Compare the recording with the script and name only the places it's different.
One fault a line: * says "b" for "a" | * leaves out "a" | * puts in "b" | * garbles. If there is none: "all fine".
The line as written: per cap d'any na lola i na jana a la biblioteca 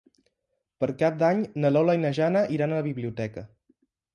* puts in "iran"